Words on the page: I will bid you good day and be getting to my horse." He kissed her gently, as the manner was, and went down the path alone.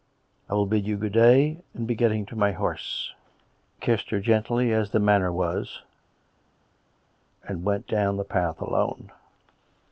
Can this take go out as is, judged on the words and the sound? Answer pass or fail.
fail